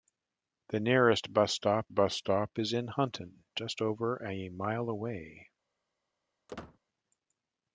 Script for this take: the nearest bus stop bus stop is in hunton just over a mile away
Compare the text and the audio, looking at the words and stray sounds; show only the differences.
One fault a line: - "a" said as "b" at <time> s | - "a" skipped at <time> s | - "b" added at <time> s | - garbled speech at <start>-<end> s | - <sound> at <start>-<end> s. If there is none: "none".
- squeak at 6.5-6.8 s